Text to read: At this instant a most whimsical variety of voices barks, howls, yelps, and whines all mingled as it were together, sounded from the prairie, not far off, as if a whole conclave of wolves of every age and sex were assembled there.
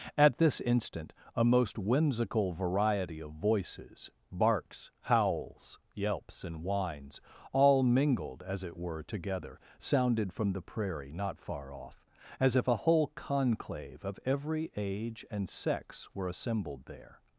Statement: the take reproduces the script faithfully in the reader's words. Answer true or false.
false